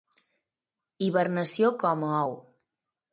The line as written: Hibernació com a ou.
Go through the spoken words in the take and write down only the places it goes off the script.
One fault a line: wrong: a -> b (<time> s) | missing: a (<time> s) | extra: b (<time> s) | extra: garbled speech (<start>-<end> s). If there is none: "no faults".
no faults